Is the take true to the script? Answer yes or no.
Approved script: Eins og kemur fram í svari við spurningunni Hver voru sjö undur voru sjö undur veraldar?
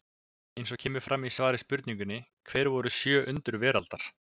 no